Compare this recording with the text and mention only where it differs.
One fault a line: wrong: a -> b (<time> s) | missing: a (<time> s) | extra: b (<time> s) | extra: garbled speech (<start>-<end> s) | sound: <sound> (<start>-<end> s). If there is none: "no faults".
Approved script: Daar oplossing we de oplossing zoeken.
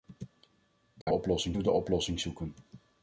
sound: dropout (1.0-1.1 s)